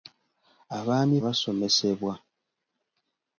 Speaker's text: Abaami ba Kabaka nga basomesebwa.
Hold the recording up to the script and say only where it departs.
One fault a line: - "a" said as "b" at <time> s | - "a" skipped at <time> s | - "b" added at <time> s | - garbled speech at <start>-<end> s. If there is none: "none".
- "ba Kabaka nga" skipped at 1.2 s